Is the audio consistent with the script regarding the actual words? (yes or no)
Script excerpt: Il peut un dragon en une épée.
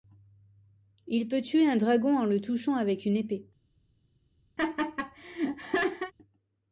no